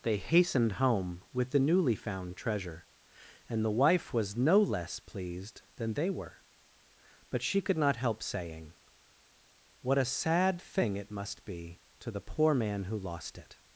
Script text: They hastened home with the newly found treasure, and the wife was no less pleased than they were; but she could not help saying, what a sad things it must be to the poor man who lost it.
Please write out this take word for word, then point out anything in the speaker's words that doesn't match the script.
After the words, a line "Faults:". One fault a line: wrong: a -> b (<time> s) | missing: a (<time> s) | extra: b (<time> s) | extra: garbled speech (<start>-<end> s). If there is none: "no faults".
They hastened home with the newly found treasure, and the wife was no less pleased than they were; but she could not help saying, what a sad thing it must be to the poor man who lost it.
Faults:
wrong: things -> thing (10.6 s)